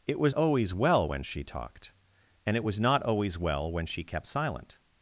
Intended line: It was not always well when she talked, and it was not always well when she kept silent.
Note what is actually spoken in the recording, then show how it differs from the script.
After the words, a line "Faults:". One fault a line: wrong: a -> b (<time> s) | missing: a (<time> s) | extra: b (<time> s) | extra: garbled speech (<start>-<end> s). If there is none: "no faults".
It was always well when she talked, and it was not always well when she kept silent.
Faults:
missing: not (0.3 s)